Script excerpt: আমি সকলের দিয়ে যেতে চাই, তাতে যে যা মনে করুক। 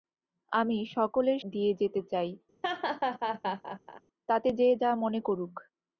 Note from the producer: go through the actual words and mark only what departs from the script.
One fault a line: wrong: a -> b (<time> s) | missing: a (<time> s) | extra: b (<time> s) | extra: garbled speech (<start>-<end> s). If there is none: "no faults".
no faults